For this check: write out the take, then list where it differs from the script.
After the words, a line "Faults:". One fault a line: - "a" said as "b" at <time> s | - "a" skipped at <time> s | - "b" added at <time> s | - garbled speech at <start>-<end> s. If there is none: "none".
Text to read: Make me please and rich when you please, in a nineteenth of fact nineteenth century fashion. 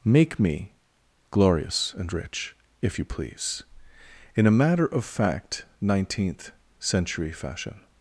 Make me glorious and rich if you please, in a matter of fact nineteenth century fashion.
Faults:
- "please" said as "glorious" at 1.3 s
- "when" said as "if" at 2.8 s
- "nineteenth" said as "matter" at 4.5 s